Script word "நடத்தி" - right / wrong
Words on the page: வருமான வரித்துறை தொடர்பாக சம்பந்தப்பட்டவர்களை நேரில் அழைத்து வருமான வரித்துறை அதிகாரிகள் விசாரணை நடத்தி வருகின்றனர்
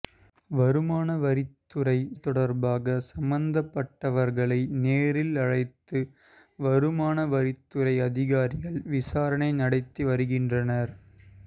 right